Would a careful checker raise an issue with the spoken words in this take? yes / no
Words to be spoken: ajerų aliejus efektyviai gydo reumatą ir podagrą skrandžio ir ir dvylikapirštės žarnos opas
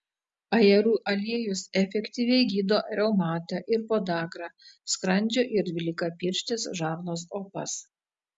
yes